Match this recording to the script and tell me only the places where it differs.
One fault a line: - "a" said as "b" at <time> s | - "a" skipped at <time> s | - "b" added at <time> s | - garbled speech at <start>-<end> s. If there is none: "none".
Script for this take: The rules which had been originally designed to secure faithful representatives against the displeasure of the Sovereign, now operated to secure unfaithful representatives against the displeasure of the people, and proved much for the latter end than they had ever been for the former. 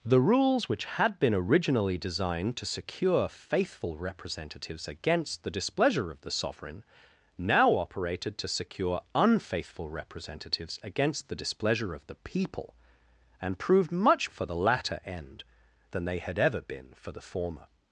none